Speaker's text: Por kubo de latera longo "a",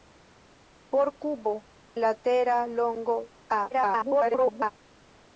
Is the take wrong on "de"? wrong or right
wrong